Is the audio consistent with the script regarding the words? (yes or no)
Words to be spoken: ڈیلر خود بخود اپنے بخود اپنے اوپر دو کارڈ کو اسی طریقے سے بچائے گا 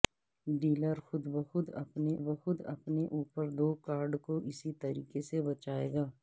yes